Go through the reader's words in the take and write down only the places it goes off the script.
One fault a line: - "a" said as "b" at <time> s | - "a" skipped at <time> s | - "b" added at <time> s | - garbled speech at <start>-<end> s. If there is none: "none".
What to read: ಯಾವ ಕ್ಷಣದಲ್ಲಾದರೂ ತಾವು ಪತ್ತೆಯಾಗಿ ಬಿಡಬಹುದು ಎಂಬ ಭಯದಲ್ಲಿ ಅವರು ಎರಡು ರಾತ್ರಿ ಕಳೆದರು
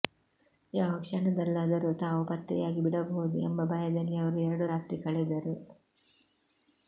none